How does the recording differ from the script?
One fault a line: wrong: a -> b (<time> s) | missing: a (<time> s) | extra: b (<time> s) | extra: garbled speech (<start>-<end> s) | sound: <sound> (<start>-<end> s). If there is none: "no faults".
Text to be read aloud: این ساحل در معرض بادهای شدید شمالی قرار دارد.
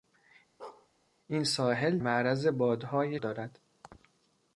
sound: bark (0.6-0.9 s)
missing: در (2.0 s)
missing: شدید شمالی قرار (3.2 s)